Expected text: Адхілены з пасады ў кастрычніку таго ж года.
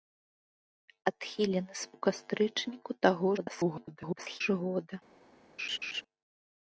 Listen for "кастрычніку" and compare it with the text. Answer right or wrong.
right